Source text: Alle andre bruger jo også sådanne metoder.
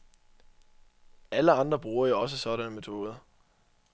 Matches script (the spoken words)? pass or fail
pass